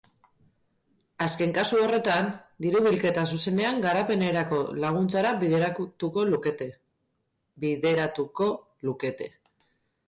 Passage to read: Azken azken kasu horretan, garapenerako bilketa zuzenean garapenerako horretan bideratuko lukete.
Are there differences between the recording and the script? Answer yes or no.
yes